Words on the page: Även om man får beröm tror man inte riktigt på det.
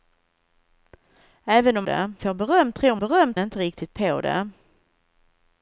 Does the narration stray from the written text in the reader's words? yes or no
yes